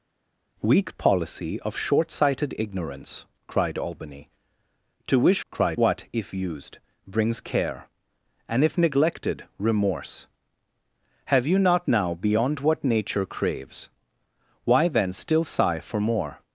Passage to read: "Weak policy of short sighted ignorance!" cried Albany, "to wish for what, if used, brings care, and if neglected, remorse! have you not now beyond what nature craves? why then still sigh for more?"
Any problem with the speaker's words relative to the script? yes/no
yes